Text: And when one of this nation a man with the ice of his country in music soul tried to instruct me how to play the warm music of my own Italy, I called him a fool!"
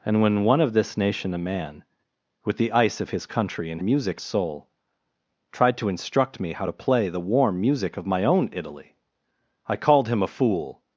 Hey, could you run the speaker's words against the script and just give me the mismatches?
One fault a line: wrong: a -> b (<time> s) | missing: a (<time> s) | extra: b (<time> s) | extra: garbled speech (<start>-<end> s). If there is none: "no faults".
no faults